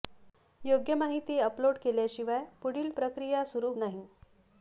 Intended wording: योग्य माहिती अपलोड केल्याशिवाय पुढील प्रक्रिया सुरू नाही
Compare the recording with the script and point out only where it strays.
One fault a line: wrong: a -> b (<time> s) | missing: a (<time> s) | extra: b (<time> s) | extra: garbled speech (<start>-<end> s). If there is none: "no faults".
no faults